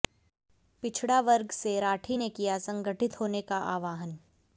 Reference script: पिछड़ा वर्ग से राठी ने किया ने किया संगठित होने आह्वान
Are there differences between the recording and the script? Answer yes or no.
yes